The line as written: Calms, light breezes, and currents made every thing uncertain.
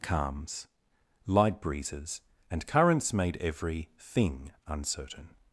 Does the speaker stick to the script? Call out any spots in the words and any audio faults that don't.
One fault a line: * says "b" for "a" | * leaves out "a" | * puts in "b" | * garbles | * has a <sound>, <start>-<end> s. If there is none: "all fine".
all fine